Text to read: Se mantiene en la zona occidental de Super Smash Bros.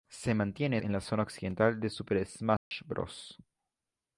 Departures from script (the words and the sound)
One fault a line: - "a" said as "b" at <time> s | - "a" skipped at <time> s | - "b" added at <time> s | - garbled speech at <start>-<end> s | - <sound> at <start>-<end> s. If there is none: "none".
- dropout at 2.6-2.7 s